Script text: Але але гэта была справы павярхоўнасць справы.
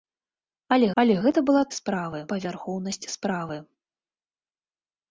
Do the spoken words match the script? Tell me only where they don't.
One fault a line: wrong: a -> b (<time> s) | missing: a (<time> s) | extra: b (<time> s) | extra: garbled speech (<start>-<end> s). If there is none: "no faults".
no faults